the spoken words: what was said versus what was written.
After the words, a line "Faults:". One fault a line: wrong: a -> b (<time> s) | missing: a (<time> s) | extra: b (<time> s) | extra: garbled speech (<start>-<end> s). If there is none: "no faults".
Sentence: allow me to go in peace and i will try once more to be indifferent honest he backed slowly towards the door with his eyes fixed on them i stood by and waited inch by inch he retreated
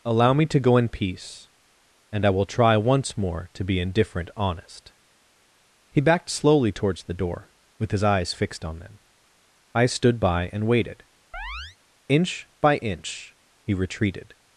allow me to go in peace and i will try once more to be indifferent honest he backed slowly towards the door with his eyes fixed on them i stood by and waited inch by inch he retreated
Faults:
no faults